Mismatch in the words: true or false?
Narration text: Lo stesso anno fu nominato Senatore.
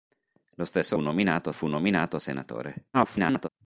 true